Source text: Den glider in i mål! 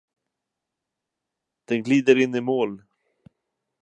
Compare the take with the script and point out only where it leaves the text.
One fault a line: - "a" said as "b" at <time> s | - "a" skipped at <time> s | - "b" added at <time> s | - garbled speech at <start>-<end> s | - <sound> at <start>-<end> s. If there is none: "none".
none